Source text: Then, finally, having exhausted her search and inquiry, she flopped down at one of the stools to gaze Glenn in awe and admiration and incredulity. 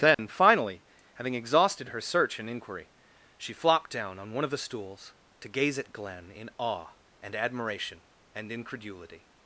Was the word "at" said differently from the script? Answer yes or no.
yes